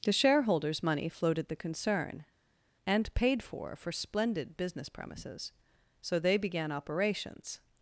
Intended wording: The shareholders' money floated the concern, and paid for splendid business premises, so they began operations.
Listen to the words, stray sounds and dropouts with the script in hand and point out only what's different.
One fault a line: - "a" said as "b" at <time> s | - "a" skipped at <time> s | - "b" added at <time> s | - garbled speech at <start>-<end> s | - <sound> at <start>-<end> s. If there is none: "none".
- "for" added at 3.8 s